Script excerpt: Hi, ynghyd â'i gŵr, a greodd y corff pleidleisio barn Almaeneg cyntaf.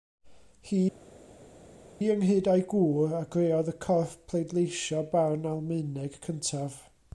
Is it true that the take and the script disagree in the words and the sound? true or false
false